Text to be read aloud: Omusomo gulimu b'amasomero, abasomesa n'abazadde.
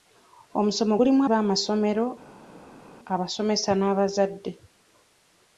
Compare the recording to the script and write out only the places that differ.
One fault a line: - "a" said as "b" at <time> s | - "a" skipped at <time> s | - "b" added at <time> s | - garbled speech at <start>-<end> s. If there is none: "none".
none